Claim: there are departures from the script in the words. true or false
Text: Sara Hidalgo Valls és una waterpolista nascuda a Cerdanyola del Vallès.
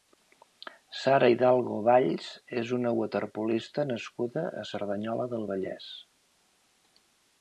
false